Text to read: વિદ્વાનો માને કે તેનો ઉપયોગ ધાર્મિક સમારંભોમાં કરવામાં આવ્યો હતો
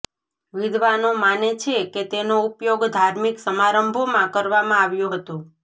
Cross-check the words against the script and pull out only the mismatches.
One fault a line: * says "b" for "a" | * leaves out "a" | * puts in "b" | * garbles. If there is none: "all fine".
* puts in "છે"